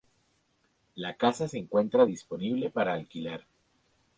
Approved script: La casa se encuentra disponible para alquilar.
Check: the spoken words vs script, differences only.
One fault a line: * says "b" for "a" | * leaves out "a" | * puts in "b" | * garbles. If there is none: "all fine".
all fine